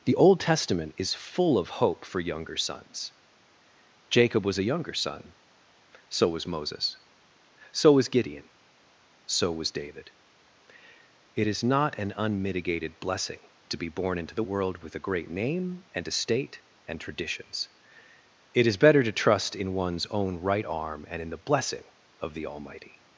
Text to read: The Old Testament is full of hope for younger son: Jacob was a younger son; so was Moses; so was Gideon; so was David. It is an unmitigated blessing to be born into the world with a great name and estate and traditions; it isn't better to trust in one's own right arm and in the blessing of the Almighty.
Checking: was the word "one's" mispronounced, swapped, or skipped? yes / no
no